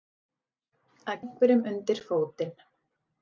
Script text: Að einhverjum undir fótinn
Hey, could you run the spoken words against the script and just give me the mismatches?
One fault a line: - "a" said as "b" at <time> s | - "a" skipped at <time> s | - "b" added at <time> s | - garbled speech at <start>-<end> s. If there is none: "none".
none